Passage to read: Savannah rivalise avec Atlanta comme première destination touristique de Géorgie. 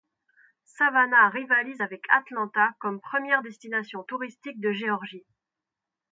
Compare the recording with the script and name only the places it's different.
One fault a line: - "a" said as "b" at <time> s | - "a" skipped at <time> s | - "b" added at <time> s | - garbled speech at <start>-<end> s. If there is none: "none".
none